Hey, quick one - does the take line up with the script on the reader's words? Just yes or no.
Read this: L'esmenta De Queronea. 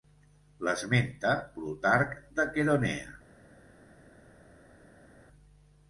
no